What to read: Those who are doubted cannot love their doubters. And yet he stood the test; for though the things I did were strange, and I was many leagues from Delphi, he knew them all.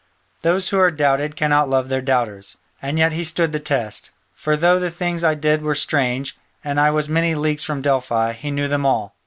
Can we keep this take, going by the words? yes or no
yes